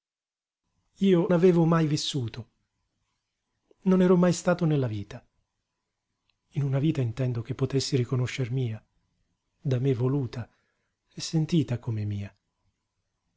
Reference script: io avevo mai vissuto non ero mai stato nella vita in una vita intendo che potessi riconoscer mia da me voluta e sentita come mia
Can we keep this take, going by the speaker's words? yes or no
yes